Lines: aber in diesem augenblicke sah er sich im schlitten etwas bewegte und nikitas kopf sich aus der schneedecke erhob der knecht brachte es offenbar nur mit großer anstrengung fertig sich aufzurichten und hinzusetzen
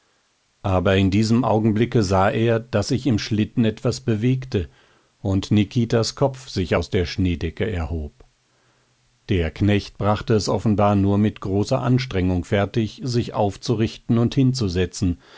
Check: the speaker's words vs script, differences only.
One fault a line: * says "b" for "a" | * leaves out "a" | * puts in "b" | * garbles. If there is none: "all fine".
* puts in "daß"